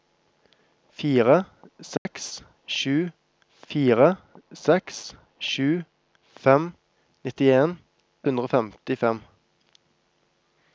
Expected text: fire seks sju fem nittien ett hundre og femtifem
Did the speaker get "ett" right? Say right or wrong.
wrong